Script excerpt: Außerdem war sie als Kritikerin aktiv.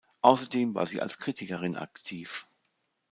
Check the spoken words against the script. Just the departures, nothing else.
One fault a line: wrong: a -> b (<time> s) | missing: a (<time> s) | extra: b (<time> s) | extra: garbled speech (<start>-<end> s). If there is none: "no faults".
no faults